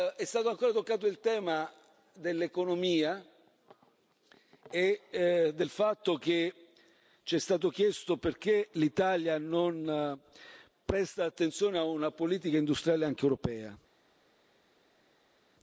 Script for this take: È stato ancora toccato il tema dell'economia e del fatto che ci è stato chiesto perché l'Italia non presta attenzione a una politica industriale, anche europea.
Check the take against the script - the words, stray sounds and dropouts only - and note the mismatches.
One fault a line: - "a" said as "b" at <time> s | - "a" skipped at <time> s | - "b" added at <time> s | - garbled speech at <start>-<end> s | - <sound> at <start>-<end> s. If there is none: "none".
none